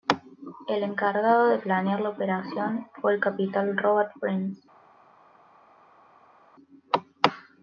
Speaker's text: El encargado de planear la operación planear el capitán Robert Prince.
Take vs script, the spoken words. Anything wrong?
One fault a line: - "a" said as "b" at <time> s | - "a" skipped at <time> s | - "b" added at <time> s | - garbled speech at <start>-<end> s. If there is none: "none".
- "planear" said as "fue" at 3.0 s